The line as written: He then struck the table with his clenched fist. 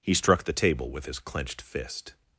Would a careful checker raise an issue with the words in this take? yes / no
yes